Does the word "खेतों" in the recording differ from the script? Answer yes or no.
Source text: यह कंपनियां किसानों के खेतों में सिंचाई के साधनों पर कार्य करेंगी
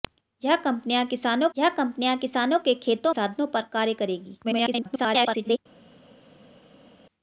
yes